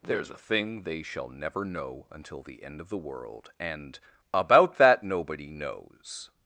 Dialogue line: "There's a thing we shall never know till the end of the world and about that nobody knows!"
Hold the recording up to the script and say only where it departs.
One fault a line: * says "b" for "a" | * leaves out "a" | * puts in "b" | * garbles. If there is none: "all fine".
* says "they" for "we"
* says "until" for "till"